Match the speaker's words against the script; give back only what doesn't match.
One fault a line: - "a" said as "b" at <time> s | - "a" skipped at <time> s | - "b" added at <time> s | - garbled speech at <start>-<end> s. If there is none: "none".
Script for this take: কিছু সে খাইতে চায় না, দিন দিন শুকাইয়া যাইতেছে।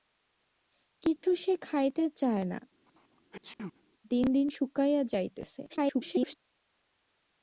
- garbled speech at 5.7-6.4 s